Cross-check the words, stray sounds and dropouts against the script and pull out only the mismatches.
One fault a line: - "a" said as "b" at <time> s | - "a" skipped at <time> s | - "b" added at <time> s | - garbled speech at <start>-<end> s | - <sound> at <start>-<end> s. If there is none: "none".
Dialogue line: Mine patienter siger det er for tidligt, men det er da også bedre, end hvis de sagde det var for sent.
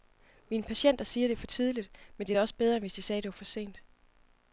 none